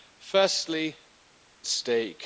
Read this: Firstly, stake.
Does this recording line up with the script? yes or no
yes